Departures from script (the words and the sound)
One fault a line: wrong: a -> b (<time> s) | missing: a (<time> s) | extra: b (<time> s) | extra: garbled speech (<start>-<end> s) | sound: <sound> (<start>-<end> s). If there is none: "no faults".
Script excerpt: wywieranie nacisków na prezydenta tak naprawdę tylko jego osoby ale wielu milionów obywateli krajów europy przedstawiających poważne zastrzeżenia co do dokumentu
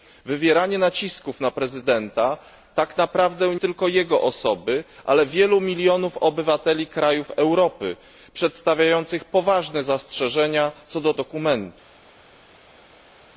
no faults